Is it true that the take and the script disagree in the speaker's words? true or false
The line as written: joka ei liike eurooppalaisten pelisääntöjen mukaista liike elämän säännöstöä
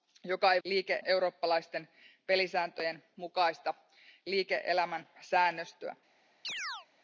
false